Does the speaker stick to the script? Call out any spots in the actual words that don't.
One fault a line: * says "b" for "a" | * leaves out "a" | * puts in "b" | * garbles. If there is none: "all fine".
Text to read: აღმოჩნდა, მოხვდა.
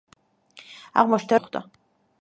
all fine